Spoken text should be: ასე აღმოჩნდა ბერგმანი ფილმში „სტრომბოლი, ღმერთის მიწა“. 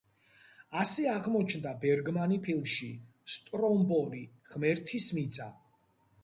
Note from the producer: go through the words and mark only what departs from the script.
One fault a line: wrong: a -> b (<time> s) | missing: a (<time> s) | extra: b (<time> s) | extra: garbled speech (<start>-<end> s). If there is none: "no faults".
no faults